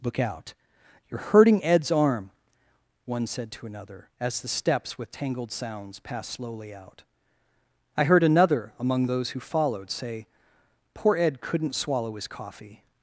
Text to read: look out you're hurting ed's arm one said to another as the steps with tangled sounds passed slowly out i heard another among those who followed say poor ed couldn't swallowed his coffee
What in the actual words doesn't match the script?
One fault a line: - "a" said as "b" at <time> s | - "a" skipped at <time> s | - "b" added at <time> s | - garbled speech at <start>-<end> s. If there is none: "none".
- "swallowed" said as "swallow" at 11.7 s